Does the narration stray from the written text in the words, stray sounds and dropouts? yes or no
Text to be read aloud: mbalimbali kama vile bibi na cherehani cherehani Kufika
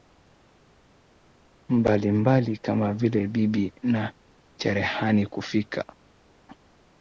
yes